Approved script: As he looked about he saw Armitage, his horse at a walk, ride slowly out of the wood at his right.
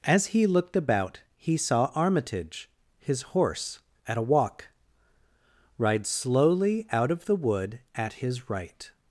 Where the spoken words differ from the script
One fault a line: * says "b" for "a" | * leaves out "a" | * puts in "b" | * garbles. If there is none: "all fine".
all fine